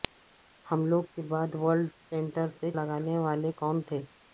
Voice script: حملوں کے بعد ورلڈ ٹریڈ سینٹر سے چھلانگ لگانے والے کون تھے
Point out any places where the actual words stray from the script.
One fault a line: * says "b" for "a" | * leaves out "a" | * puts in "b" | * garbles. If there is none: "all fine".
* leaves out "ٹریڈ"
* leaves out "چھلانگ"